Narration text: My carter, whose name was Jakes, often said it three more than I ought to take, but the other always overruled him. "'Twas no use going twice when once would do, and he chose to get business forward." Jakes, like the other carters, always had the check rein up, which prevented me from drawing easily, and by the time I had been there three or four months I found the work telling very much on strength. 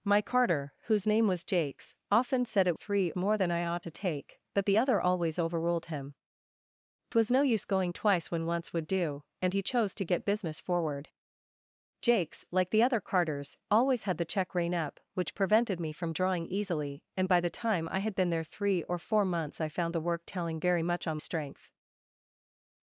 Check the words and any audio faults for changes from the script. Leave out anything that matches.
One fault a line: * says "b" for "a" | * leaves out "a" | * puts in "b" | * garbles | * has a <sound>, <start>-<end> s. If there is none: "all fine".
all fine